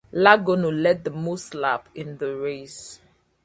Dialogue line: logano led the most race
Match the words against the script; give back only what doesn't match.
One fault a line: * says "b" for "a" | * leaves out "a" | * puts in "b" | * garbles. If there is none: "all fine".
* puts in "laps in the"